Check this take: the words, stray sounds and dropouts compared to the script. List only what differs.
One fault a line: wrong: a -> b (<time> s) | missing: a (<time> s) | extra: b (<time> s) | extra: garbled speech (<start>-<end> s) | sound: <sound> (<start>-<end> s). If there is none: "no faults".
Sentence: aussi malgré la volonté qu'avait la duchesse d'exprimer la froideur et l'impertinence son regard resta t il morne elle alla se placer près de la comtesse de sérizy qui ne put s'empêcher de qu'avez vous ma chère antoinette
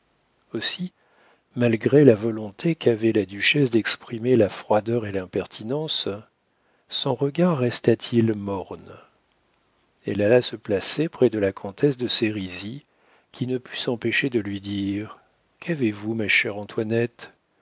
extra: lui dire (14.4 s)